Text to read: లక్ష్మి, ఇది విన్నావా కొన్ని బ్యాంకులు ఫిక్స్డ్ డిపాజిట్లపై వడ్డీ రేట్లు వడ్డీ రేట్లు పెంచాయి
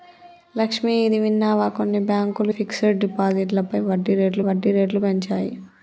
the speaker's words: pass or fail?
pass